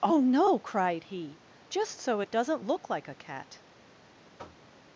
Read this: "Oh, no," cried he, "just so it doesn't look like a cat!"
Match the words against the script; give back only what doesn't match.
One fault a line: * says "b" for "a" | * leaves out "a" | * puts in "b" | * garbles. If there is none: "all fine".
all fine